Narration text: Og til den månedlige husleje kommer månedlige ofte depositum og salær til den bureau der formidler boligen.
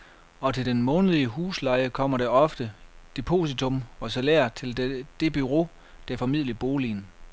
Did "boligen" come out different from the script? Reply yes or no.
no